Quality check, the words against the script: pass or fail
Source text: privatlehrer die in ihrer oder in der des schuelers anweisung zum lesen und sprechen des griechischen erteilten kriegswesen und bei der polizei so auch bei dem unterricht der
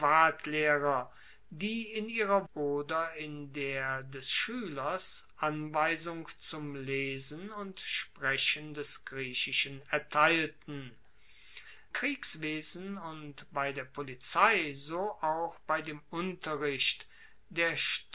pass